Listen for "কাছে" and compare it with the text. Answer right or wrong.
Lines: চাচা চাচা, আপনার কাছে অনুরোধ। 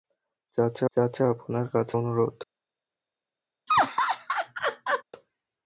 right